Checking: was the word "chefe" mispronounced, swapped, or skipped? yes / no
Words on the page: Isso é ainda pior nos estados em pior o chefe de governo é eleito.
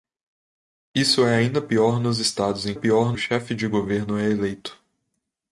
no